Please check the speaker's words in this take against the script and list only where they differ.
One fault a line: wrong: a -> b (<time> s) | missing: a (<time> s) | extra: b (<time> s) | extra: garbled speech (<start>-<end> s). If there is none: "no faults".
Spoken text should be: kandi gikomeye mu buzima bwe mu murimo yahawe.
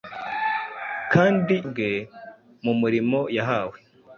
missing: gikomeye mu buzima (1.6 s)